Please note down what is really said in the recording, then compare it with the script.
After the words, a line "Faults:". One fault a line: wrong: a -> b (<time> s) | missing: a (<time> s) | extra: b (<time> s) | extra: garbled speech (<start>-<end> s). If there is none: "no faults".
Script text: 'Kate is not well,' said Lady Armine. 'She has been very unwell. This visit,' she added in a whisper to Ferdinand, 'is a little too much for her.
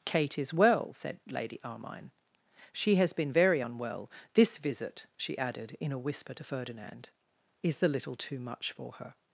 'Kate is well,' said Lady Armine. 'She has been very unwell. This visit,' she added in a whisper to Ferdinand, 'is the little too much for her.
Faults:
missing: not (0.5 s)
wrong: a -> the (7.8 s)